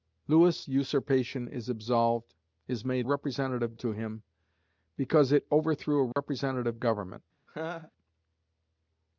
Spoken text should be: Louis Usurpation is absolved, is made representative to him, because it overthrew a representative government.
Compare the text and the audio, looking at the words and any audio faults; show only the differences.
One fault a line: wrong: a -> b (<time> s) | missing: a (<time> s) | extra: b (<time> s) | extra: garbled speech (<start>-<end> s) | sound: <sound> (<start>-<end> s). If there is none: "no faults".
sound: dropout (6.1-6.2 s)
sound: laugh (7.5-7.9 s)